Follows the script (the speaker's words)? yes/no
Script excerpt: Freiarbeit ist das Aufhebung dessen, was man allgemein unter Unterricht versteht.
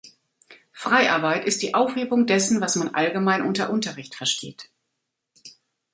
no